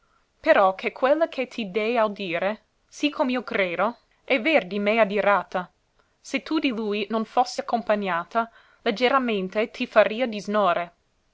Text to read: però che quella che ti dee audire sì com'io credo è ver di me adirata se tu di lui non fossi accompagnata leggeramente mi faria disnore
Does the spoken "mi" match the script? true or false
false